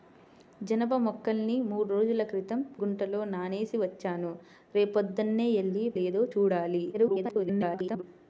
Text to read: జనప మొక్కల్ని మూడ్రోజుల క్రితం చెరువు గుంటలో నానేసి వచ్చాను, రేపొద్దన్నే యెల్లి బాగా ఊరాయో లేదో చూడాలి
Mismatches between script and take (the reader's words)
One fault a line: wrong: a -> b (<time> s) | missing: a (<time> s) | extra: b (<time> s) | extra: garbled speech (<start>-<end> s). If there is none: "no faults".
missing: చెరువు (2.6 s)
missing: బాగా ఊరాయో (5.9 s)
extra: garbled speech (6.9-8.0 s)